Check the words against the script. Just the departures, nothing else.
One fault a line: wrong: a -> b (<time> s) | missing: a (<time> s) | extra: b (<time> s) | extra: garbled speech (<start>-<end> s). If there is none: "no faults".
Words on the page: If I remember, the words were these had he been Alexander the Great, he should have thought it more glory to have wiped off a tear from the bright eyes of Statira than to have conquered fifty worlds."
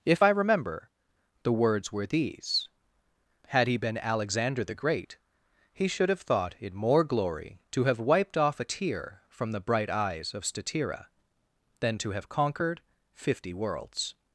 no faults